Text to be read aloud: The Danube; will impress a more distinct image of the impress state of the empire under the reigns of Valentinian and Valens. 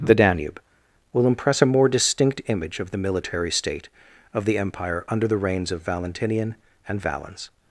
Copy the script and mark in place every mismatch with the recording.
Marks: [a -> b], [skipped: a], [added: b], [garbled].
The Danube; will impress a more distinct image of the [impress -> military] state of the empire under the reigns of Valentinian and Valens.